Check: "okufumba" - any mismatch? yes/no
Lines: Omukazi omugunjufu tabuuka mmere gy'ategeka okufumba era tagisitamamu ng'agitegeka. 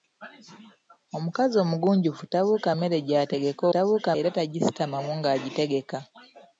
yes